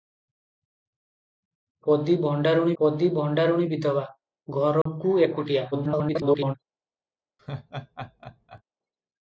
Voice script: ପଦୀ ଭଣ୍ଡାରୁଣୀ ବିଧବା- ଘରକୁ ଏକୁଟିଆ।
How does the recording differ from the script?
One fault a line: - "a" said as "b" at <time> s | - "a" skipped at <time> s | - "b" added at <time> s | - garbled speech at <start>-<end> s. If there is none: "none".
- "ପଦୀ ଭଣ୍ଡାରୁଣୀ" added at 2.8 s
- garbled speech at 5.7-6.5 s